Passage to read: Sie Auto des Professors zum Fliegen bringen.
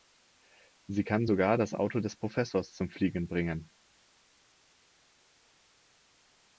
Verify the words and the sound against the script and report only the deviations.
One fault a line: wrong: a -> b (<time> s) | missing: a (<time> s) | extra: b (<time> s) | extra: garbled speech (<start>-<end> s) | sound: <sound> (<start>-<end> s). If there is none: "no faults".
extra: kann sogar das (1.0 s)